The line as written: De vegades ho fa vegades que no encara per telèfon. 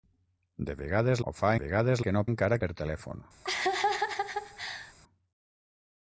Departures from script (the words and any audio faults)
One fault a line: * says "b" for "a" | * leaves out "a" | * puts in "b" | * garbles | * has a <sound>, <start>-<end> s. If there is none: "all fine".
* has a laugh, 3.4-4.9 s